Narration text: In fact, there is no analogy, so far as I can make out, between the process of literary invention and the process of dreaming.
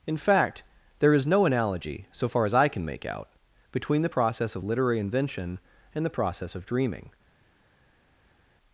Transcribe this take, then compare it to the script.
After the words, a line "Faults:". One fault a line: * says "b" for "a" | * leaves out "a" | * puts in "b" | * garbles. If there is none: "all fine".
In fact, there is no analogy, so far as I can make out, between the process of literary invention and the process of dreaming.
Faults:
all fine